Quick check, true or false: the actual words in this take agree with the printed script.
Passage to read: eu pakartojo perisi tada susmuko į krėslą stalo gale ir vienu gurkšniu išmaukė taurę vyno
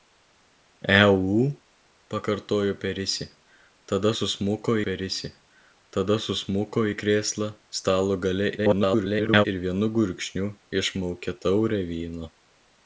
false